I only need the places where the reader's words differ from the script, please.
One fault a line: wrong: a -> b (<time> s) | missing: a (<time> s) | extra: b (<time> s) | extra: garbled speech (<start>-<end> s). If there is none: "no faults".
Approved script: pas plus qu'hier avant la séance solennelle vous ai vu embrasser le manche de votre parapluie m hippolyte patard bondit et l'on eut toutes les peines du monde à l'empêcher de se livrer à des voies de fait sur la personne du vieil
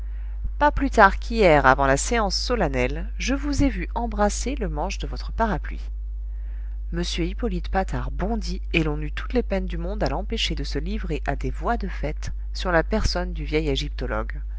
extra: tard (0.9 s)
extra: je (3.2 s)